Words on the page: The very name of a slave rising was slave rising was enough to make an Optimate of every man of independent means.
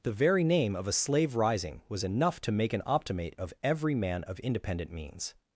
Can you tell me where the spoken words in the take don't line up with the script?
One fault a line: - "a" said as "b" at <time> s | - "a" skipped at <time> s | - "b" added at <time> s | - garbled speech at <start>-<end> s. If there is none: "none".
- "slave rising was" skipped at 2.0 s